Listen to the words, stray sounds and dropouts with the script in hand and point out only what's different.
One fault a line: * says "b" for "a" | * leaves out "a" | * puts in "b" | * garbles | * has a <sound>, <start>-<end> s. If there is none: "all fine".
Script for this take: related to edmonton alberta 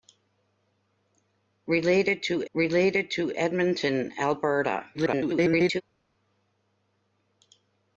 * puts in "related to"
* garbles